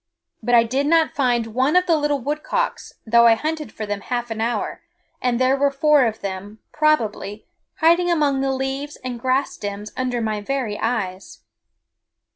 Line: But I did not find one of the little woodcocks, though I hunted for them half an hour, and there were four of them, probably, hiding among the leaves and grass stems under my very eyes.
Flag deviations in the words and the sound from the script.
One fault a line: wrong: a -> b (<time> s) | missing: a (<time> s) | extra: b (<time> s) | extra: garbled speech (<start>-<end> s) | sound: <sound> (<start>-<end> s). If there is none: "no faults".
no faults